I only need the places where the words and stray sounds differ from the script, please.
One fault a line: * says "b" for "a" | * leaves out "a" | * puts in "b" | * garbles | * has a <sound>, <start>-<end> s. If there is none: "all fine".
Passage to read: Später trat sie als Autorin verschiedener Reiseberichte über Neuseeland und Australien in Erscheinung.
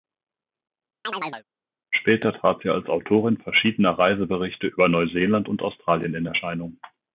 * has a chirp, 1.0-1.4 s